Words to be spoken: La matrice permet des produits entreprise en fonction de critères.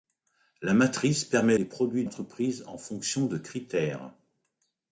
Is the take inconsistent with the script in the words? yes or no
no